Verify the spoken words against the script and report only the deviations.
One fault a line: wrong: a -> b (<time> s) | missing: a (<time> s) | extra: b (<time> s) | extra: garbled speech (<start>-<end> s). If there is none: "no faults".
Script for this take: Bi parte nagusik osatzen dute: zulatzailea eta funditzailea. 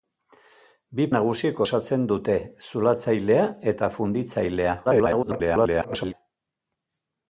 missing: parte (1.1 s)
extra: garbled speech (4.8-6.1 s)